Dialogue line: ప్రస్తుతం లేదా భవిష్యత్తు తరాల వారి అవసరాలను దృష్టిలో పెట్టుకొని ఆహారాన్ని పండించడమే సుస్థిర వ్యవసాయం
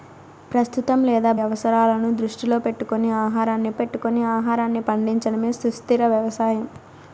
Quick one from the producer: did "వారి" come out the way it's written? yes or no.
no